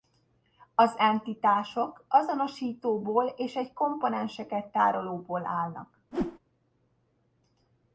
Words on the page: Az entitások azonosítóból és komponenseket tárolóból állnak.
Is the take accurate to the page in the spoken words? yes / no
no